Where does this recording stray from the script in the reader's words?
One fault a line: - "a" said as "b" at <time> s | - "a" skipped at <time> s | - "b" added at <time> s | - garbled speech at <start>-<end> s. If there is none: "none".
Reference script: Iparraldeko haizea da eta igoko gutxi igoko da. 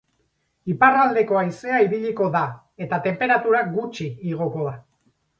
- "ibiliko" added at 1.9 s
- "igoko" said as "tenperatura" at 3.0 s